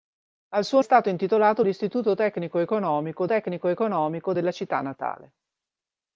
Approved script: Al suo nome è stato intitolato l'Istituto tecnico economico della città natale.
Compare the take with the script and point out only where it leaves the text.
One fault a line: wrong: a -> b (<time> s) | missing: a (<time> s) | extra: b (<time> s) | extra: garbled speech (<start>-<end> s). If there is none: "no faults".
missing: nome (0.8 s)
extra: tecnico economico (3.2 s)